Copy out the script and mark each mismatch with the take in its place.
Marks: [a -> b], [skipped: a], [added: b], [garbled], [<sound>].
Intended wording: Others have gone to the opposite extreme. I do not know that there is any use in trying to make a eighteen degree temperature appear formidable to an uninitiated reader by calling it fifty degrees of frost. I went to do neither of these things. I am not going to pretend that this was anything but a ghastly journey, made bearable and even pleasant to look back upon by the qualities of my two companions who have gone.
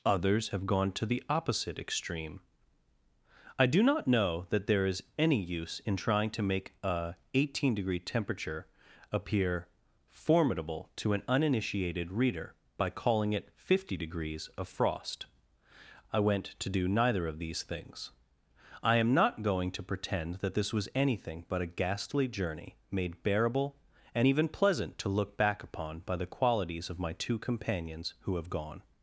Others have gone to the opposite extreme. I do not know that there is any use in trying to make a eighteen degree temperature appear formidable to an uninitiated reader by calling it fifty degrees of frost. I went to do neither of these things. I am not going to pretend that this was anything but a ghastly journey, made bearable and even pleasant to look back upon by the qualities of my two companions who have gone.